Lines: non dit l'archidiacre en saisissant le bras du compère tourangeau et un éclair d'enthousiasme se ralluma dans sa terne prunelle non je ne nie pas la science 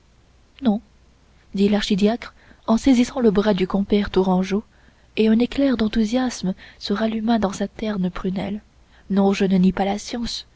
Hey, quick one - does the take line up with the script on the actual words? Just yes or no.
yes